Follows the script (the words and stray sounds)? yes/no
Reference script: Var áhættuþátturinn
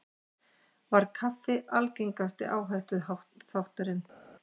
no